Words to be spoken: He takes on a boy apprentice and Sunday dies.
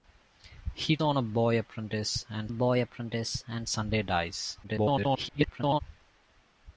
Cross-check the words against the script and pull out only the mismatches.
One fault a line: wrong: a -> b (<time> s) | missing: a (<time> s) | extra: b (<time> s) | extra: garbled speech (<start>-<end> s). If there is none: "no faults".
missing: takes (1.0 s)
extra: boy apprentice and (2.5 s)
extra: garbled speech (4.6-5.8 s)